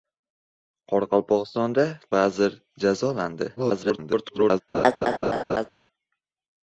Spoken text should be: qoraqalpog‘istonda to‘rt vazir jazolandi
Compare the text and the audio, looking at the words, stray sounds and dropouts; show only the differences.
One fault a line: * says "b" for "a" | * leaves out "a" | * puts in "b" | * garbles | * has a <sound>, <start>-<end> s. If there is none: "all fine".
* leaves out "to‘rt"
* garbles
* has a laugh, 4.7-5.7 s